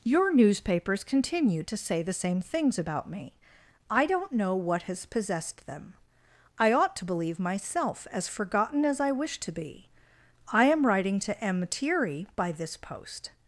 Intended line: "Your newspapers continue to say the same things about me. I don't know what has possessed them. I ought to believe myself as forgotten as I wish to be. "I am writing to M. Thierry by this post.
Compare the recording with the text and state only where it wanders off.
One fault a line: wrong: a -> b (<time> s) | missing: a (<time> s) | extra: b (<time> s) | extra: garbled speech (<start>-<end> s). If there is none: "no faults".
no faults